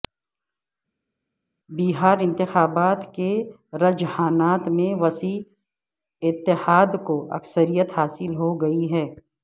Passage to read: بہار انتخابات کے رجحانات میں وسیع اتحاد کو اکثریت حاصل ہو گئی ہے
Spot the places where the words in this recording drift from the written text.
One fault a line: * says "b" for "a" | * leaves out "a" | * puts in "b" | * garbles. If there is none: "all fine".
all fine